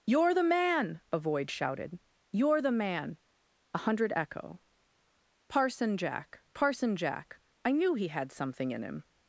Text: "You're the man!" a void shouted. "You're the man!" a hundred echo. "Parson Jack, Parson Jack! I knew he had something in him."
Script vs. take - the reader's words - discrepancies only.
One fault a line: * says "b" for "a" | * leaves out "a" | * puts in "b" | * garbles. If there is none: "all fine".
all fine